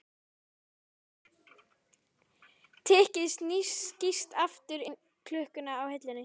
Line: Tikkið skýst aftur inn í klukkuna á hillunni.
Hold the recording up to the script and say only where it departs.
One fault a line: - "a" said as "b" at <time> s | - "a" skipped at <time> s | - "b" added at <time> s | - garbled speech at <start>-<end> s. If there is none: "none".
- "inn" skipped at 4.9 s